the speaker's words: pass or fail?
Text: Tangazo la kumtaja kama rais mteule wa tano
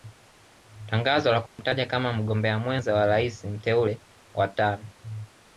fail